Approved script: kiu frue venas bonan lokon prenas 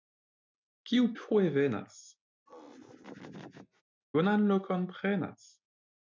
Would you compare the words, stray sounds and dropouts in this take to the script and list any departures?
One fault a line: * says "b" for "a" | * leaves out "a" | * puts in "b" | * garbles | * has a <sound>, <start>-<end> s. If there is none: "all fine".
* has a laugh, 2.5-3.8 s